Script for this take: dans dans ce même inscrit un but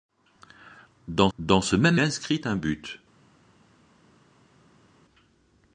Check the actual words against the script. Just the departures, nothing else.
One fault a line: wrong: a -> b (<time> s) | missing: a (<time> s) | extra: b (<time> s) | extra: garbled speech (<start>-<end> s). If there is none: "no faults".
no faults